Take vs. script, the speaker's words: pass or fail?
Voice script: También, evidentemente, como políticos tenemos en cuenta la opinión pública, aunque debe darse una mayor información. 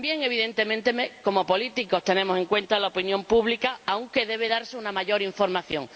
pass